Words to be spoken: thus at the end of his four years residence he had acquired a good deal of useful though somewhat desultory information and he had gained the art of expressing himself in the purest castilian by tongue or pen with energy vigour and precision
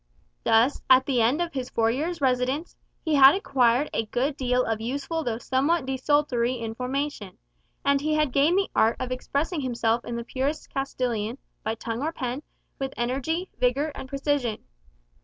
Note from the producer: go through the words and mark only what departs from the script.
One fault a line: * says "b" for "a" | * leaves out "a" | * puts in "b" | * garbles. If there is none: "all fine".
all fine